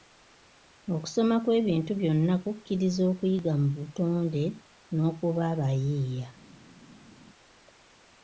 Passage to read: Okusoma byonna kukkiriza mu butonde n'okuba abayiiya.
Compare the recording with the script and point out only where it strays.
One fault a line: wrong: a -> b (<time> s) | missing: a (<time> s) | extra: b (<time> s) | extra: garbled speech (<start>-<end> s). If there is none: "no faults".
extra: kw'ebintu (1.4 s)
extra: okuyiga (3.1 s)